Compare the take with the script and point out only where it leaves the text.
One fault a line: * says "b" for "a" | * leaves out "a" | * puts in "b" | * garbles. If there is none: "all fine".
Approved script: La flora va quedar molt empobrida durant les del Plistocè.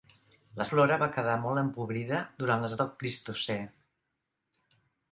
all fine